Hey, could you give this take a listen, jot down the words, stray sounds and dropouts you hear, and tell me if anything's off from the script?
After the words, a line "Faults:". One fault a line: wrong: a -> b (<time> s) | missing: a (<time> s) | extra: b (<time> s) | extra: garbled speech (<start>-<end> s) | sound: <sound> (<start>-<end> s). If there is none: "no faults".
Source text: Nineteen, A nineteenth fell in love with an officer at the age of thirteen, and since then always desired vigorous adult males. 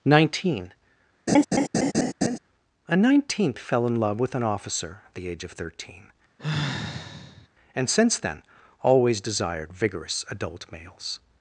Nineteen, A nineteenth fell in love with an officer at the age of thirteen, and since then always desired vigorous adult males.
Faults:
sound: laugh (1.3-2.4 s)
sound: sigh (6.4-7.5 s)